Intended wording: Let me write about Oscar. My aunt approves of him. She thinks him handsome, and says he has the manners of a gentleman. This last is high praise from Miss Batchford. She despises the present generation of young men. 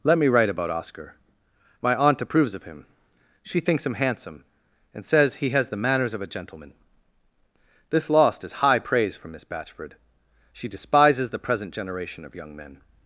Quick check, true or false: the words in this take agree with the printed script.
false